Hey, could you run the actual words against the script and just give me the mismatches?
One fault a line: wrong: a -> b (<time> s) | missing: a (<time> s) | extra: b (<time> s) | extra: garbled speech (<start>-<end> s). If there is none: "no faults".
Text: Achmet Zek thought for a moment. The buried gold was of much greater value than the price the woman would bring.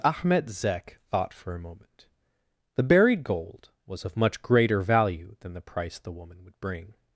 no faults